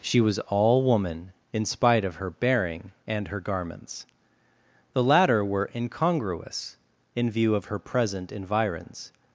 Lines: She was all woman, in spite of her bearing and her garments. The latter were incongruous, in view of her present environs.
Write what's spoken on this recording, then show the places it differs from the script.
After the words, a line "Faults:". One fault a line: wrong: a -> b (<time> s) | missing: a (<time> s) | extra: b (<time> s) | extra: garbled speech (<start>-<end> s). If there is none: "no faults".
She was all woman, in spite of her bearing and her garments. The latter were incongruous, in view of her present environs.
Faults:
no faults